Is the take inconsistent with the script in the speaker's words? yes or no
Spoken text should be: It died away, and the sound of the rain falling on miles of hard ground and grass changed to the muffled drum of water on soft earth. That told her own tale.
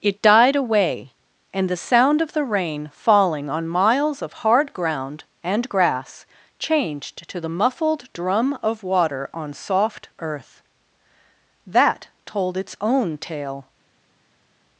yes